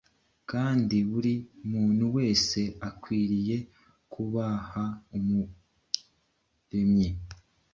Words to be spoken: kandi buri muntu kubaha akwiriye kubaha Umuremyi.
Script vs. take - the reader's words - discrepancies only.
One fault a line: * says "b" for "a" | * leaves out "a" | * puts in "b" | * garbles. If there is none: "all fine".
* says "wese" for "kubaha"